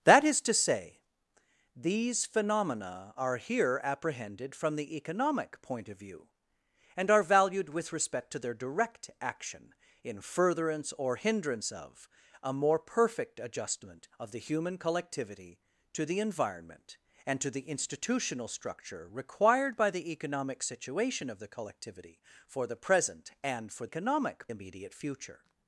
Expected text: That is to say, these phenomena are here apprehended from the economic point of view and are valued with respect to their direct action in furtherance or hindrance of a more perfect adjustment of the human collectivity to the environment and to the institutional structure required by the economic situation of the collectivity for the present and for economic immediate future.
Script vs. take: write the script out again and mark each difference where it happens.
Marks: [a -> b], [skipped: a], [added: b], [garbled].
That is to say, these phenomena are here apprehended from the economic point of view and are valued with respect to their direct action in furtherance or hindrance of a more perfect adjustment of the human collectivity to the environment and to the institutional structure required by the economic situation of the collectivity for the present and for economic immediate future.